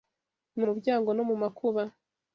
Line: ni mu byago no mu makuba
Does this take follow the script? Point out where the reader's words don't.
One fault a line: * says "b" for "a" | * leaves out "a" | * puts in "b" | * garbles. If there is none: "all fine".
all fine